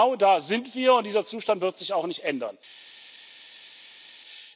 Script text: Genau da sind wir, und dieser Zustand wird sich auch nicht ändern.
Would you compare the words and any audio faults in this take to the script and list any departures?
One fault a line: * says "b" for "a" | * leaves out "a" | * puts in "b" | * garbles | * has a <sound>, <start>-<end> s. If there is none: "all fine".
all fine